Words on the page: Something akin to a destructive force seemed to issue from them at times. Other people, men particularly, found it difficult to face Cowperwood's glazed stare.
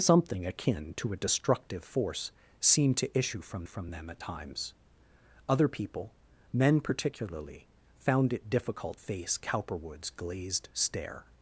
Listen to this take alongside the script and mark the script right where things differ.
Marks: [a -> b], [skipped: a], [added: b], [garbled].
Something akin to a destructive force seemed to issue from [added: from] them at times. Other people, men particularly, found it difficult [skipped: to] face Cowperwood's glazed stare.